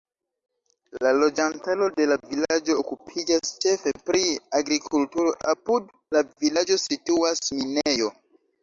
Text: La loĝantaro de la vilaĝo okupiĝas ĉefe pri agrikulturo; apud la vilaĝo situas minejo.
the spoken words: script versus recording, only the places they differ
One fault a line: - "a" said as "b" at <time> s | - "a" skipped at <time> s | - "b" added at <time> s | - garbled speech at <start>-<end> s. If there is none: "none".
none